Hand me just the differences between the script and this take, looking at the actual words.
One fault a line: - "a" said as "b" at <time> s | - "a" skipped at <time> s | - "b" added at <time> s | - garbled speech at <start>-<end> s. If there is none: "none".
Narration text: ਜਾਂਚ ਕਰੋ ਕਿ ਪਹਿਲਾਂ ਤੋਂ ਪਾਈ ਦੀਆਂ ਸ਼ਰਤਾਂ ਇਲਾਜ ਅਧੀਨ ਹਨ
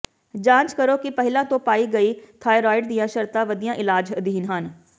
- "ਗਈ ਥਾਈਰੋਇਡ" added at 1.9 s
- "ਵਧੀਆ" added at 3.4 s